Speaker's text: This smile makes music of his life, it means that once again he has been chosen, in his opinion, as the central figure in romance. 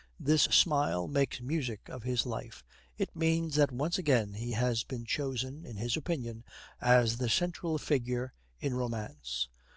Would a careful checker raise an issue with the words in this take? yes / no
no